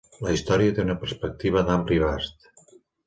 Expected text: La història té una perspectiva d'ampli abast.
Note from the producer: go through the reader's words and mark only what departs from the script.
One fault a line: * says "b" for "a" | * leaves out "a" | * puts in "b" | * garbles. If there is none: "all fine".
all fine